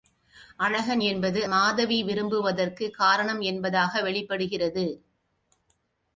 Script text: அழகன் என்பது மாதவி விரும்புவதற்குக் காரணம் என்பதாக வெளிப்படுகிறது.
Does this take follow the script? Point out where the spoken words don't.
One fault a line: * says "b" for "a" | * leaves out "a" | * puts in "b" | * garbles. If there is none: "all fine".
all fine